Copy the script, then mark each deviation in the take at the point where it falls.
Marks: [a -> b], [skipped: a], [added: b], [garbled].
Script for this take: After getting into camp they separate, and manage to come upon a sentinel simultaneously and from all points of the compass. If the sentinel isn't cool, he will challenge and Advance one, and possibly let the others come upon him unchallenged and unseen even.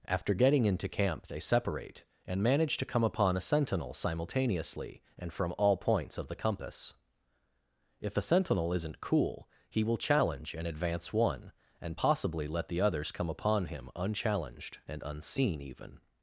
After getting into camp they separate, and manage to come upon a sentinel simultaneously and from all points of the compass. If [the -> a] sentinel isn't cool, he will challenge and Advance one, and possibly let the others come upon him unchallenged and unseen even.